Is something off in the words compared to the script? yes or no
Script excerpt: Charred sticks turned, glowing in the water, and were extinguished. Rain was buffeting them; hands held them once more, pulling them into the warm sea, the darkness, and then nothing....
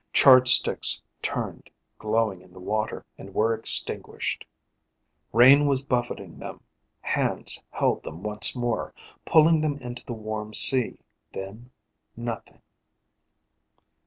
yes